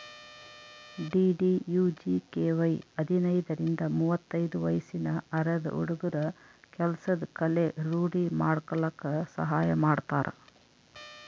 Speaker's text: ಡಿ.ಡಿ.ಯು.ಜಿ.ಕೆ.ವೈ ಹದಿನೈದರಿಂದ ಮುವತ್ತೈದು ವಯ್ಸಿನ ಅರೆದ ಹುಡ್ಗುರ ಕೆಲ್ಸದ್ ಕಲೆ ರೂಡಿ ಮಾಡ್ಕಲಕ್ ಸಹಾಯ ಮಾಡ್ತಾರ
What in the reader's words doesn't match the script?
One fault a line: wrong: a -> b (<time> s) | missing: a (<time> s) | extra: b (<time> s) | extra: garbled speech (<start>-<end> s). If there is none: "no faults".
no faults